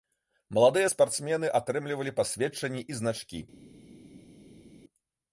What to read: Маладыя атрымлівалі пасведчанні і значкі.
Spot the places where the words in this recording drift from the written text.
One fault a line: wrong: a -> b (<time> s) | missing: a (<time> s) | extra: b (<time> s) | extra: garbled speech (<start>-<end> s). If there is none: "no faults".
extra: спартсмены (0.9 s)